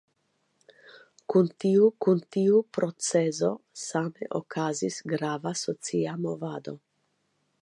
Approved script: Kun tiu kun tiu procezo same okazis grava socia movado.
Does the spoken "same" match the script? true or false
true